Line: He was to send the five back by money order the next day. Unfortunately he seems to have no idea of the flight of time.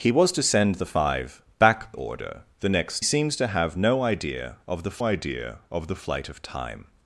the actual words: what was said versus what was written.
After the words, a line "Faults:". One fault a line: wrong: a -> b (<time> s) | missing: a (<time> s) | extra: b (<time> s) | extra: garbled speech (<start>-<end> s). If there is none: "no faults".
He was to send the five back order the next seems to have no idea of the idea of the flight of time.
Faults:
missing: by money (1.9 s)
missing: day Unfortunately he (3.0 s)
extra: idea of the (5.0 s)